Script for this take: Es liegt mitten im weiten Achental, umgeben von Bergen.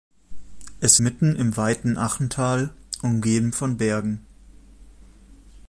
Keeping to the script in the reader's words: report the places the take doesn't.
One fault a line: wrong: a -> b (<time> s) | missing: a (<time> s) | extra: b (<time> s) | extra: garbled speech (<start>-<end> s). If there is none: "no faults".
missing: liegt (1.0 s)